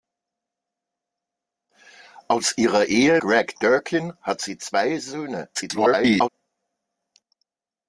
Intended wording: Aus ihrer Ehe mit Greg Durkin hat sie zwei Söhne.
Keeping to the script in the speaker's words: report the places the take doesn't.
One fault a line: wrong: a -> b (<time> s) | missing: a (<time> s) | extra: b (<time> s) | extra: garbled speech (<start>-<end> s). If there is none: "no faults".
missing: mit (3.2 s)
extra: garbled speech (5.5-6.3 s)